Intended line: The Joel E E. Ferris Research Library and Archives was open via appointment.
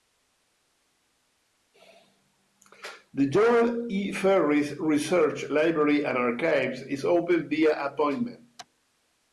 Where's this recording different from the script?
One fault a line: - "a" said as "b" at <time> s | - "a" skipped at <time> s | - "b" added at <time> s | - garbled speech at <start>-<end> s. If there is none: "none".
- "E" skipped at 4.1 s
- "was" said as "is" at 6.8 s